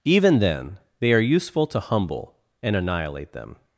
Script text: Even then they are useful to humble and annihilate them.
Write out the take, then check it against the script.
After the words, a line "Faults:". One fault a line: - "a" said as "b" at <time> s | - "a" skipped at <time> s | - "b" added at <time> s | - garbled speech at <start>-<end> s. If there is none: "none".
Even then they are useful to humble and annihilate them.
Faults:
none